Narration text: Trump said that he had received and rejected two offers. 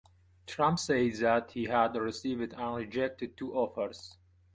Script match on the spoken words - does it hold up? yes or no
yes